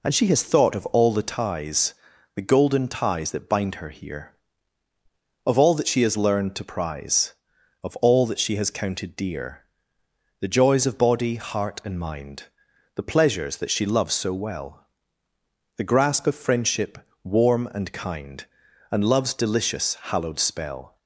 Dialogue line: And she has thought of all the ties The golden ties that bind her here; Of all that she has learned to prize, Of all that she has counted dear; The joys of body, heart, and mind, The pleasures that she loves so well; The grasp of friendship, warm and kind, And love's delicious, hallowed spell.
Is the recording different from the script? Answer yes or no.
no